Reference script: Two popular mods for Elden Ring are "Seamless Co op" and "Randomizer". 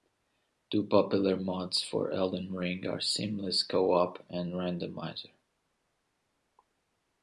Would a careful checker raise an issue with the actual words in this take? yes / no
no